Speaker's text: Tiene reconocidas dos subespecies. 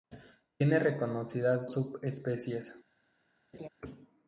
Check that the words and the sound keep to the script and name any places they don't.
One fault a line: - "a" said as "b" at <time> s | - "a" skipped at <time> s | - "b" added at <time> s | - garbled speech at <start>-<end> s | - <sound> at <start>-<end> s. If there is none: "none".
- "dos" skipped at 1.7 s
- laugh at 3.5-3.7 s